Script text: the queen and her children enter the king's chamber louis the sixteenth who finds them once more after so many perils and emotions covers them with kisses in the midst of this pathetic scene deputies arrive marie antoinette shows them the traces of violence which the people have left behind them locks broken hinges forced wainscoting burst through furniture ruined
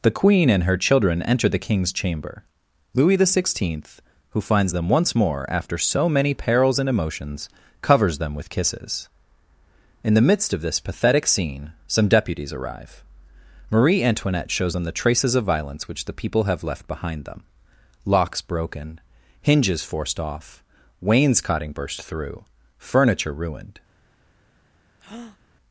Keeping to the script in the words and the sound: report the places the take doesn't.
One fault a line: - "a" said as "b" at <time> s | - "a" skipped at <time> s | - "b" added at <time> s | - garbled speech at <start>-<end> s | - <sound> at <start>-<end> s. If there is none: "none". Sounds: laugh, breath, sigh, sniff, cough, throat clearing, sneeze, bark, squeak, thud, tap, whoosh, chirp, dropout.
- "some" added at 11.9 s
- "off" added at 20.2 s
- breath at 25.0-25.4 s